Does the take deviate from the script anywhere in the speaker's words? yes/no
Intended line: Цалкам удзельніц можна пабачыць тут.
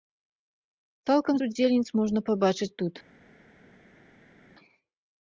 no